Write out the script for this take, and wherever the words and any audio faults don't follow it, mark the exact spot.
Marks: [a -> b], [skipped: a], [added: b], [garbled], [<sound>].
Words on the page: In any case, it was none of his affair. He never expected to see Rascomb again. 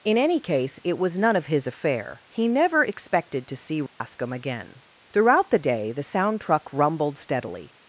In any case, it was none of his affair. He never expected to see Rascomb [dropout] again. [added: Throughout the day the sound truck rumbled steadily]